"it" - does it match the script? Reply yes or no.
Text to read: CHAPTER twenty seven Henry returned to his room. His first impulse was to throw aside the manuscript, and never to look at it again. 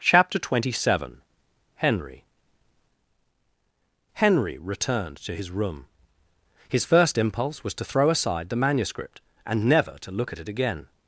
yes